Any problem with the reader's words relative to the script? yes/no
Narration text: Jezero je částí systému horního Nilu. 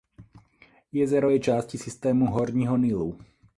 no